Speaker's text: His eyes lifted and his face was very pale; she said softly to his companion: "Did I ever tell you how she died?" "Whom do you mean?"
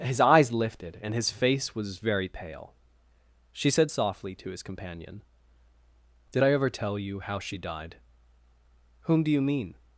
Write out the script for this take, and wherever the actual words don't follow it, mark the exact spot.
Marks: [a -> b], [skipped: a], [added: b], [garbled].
His eyes lifted and his face was very pale; she said softly to his companion: "Did I ever tell you how she died?" "Whom do you mean?"